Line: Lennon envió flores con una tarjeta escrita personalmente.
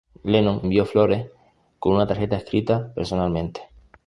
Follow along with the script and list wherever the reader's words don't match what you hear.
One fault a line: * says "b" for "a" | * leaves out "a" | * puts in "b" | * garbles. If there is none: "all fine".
all fine